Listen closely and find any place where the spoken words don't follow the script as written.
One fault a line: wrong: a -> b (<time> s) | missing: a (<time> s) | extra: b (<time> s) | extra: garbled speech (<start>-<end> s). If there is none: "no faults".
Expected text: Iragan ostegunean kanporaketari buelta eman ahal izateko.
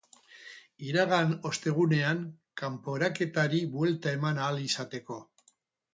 no faults